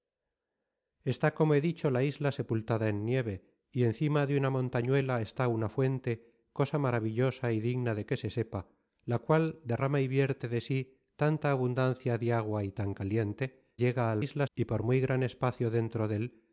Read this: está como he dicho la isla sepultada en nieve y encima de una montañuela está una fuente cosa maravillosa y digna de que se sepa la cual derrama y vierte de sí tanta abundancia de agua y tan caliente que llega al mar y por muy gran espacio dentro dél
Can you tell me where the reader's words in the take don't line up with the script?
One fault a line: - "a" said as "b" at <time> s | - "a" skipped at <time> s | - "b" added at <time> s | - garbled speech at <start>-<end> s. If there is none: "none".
- "que" skipped at 13.6 s
- "mar" said as "isla" at 14.2 s